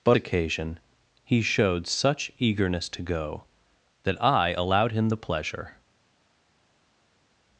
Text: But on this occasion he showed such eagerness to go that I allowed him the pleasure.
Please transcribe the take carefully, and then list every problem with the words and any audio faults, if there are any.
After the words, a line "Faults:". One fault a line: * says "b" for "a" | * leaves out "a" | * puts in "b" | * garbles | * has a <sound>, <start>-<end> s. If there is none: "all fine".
But occasion he showed such eagerness to go that I allowed him the pleasure.
Faults:
* leaves out "on this"